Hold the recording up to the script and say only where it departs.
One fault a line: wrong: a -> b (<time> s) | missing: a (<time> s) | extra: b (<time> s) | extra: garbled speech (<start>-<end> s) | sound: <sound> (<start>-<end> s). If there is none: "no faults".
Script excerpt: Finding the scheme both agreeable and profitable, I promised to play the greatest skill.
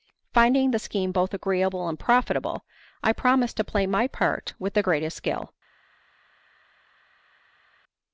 extra: my part with (3.8 s)